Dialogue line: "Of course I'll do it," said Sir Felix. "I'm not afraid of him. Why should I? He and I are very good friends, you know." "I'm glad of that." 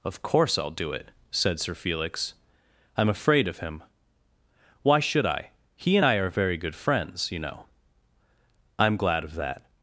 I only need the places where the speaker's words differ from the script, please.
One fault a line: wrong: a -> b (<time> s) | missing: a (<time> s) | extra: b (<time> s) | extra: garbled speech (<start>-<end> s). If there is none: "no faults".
missing: not (3.1 s)